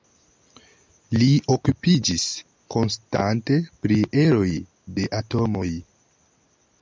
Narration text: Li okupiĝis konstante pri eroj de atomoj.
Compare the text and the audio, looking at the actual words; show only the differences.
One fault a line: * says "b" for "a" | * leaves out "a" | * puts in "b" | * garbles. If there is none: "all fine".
all fine